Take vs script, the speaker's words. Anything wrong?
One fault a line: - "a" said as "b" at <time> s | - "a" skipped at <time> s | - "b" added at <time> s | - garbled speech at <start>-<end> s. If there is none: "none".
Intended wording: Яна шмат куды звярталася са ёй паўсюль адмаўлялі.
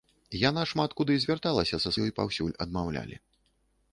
none